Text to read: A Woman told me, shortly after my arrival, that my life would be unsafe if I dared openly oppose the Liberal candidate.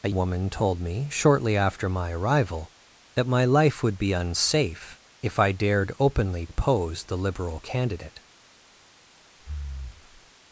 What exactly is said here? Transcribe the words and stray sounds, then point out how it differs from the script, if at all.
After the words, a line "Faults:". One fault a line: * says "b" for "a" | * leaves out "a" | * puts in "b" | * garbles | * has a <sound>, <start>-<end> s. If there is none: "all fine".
A Woman told me, shortly after my arrival, that my life would be unsafe if I dared openly oppose the Liberal candidate.
Faults:
* has a breath, 9.4-10.3 s